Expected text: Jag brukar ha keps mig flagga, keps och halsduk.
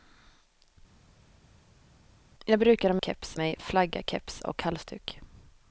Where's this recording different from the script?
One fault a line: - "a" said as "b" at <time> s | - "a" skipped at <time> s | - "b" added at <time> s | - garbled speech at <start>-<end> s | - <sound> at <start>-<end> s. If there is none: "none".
none